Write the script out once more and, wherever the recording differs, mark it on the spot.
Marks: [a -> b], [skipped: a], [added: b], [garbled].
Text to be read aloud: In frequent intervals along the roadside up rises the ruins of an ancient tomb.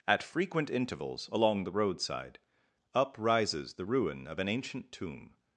[In -> At] frequent intervals along the roadside up rises the [ruins -> ruin] of an ancient tomb.